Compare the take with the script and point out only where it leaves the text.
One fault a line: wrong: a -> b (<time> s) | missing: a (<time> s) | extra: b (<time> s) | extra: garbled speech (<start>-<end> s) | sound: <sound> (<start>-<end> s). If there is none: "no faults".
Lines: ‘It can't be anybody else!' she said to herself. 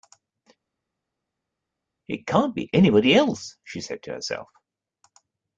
no faults